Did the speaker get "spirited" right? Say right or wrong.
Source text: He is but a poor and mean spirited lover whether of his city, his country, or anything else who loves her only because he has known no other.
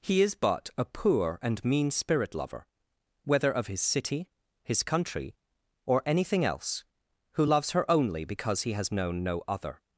wrong